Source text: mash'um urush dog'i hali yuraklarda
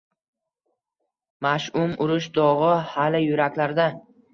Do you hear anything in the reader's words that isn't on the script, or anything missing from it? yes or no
no